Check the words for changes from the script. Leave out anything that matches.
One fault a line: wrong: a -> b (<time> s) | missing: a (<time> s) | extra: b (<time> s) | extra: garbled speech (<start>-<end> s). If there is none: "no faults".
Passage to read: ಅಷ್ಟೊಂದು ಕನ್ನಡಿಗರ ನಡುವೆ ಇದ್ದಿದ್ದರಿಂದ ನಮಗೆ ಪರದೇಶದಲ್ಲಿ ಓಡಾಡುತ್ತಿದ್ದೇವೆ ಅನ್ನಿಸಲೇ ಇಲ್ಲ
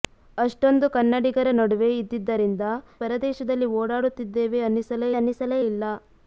missing: ನಮಗೆ (2.6 s)
extra: ಅನ್ನಿಸಲೇ (5.1 s)